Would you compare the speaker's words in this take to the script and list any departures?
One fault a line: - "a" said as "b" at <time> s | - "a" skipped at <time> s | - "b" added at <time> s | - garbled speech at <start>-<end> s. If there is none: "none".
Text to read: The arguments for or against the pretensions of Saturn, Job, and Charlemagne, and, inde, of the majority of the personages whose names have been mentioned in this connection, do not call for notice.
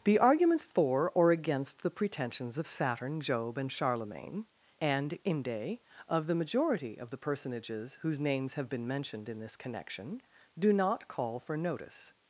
none